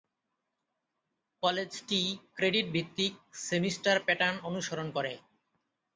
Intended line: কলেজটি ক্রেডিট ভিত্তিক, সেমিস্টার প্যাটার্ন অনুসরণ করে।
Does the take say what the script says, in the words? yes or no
yes